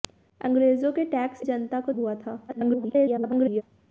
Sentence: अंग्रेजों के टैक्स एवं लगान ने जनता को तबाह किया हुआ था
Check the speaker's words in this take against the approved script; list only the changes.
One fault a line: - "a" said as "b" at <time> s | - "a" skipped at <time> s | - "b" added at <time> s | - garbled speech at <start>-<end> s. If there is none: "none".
- "एवं लगान ने" skipped at 1.4 s
- "तबाह किया" skipped at 1.9 s
- garbled speech at 2.5-3.6 s